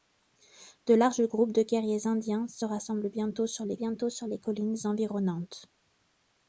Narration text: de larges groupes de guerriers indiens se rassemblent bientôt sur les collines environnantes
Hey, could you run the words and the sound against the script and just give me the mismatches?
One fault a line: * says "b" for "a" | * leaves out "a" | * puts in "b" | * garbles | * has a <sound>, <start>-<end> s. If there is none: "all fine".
* puts in "bientôt sur les"